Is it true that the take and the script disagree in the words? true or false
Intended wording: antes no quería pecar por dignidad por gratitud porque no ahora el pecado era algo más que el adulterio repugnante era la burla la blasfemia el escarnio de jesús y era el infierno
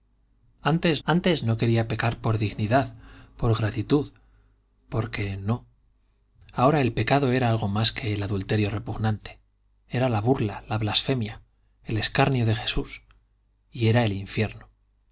true